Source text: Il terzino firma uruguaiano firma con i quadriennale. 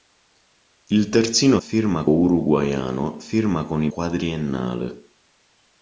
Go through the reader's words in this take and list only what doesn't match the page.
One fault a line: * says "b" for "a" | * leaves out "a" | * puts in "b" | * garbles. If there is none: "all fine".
all fine